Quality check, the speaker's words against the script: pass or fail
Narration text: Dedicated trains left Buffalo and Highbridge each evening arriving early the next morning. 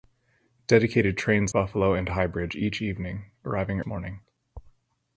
fail